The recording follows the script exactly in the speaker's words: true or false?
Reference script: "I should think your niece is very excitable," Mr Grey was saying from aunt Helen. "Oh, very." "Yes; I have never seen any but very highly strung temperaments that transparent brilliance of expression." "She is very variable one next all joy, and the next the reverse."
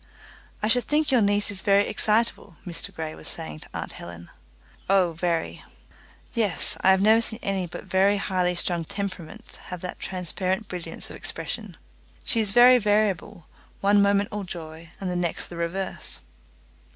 false